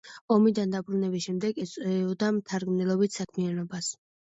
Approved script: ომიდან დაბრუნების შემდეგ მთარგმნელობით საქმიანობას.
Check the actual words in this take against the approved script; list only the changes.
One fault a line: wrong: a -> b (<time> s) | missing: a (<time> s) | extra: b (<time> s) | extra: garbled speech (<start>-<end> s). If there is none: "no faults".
extra: ეწეოდა (1.6 s)